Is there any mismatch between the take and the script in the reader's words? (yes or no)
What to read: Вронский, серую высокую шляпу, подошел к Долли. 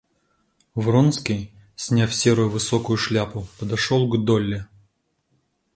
yes